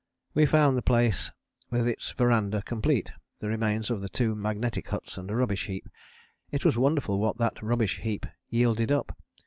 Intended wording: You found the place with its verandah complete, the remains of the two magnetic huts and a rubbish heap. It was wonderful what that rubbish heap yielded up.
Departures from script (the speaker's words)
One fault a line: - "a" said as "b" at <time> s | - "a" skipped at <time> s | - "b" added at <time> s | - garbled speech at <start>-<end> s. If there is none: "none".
- "You" said as "We" at 0.3 s